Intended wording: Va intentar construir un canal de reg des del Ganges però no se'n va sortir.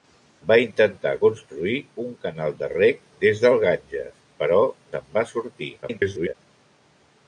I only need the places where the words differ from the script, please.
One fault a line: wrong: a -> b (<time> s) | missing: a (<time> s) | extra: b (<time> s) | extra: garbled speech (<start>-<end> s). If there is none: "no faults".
missing: no (4.6 s)
extra: garbled speech (5.8-6.3 s)